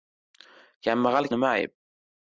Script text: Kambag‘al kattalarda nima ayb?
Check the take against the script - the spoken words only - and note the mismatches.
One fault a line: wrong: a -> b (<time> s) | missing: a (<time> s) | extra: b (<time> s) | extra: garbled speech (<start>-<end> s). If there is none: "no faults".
missing: kattalarda (1.3 s)